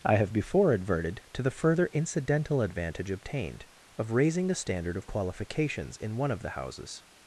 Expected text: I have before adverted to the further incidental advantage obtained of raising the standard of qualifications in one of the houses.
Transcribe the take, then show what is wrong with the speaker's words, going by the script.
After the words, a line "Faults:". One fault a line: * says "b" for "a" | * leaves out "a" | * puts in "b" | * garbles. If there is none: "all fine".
I have before adverted to the further incidental advantage obtained of raising the standard of qualifications in one of the houses.
Faults:
all fine